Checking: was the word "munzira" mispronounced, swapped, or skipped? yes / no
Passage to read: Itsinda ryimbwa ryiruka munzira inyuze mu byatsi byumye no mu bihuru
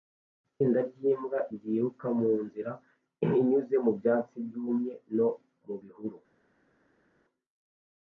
no